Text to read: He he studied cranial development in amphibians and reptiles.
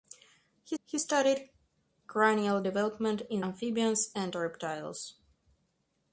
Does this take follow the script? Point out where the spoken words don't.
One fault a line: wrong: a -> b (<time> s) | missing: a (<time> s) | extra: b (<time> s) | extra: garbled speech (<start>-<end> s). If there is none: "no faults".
no faults